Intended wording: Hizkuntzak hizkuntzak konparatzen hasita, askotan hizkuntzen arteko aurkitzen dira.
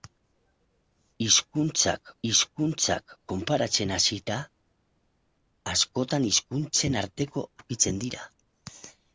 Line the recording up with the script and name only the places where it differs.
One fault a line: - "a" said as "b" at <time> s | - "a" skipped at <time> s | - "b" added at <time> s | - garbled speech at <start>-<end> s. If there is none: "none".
none